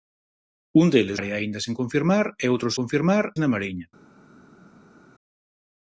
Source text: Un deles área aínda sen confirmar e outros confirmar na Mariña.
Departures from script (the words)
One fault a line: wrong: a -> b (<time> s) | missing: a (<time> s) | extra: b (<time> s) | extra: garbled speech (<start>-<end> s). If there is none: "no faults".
no faults